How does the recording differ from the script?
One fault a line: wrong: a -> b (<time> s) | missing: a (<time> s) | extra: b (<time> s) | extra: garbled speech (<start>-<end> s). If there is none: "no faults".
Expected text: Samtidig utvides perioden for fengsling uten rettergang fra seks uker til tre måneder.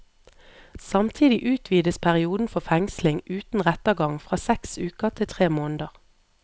no faults